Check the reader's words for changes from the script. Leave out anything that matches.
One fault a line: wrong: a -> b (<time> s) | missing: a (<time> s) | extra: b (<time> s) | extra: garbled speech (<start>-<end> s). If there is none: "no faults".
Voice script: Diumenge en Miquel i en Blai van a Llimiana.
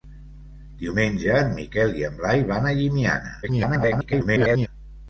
extra: garbled speech (3.4-4.7 s)